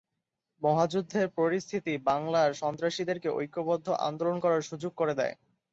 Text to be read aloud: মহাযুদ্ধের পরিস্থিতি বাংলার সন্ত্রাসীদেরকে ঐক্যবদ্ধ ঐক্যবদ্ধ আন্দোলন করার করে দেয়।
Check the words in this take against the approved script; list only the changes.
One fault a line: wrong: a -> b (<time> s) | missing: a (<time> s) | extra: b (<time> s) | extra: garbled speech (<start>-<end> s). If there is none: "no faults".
missing: ঐক্যবদ্ধ (3.9 s)
extra: সুযোগ (4.7 s)